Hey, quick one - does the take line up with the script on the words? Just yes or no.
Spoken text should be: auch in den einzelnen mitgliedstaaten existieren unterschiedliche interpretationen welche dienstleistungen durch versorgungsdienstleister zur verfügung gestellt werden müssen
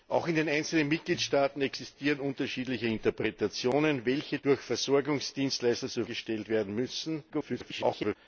no